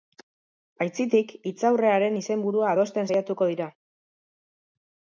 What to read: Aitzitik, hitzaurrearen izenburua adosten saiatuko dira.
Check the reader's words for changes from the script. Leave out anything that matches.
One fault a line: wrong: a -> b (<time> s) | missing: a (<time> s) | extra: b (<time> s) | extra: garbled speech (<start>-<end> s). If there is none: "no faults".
no faults